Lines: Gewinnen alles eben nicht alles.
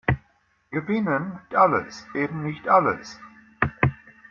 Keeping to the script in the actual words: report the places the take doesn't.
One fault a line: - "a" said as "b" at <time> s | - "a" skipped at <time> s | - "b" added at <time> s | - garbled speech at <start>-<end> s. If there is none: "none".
none